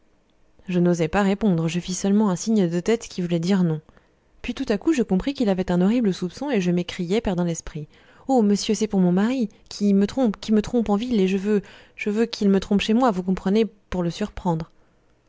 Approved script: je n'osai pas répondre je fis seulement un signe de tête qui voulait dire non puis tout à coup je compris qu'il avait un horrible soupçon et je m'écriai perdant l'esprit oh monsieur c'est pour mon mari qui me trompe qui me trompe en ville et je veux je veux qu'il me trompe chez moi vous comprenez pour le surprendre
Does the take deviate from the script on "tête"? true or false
false